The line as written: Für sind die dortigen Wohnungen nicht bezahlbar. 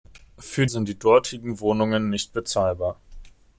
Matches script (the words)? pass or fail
pass